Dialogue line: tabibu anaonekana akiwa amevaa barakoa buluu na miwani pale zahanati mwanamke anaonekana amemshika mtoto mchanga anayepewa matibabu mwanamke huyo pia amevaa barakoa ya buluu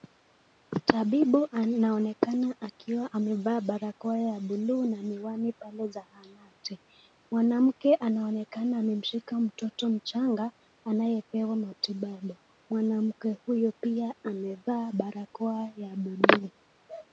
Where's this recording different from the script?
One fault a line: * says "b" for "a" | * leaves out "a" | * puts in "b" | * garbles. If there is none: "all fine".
* puts in "ya"